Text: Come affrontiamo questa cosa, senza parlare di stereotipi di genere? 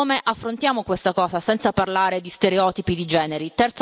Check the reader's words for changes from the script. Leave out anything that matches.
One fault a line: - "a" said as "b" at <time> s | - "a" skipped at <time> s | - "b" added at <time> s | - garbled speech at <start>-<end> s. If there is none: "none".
none